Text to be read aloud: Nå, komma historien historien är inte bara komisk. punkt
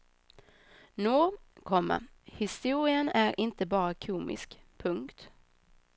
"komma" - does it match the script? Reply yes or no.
yes